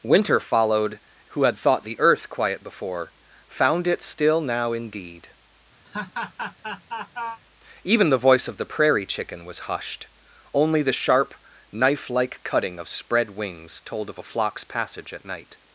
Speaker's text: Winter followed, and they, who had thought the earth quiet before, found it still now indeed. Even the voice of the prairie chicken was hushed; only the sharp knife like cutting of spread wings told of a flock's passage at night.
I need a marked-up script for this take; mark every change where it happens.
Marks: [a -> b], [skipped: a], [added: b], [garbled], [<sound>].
Winter followed, [skipped: and they,] who had thought the earth quiet before, found it still now indeed. [laugh] Even the voice of the prairie chicken was hushed; only the sharp knife like cutting of spread wings told of a flock's passage at night.